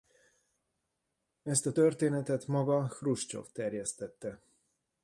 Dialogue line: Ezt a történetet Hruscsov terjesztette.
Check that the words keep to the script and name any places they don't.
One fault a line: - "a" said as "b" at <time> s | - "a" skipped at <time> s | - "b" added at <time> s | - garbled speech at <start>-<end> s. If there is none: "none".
- "maga" added at 2.5 s